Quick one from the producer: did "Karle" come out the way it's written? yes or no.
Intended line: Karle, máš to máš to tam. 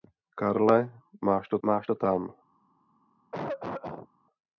yes